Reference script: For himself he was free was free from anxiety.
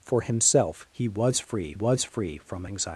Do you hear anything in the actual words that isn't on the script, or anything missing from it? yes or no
no